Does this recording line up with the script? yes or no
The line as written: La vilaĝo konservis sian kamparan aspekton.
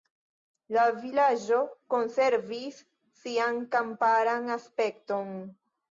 yes